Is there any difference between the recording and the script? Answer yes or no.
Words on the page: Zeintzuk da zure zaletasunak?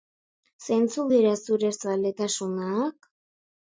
yes